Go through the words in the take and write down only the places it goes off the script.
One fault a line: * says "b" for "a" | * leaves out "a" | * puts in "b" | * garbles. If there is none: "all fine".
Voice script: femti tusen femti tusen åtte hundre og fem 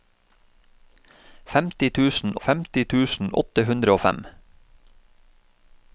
all fine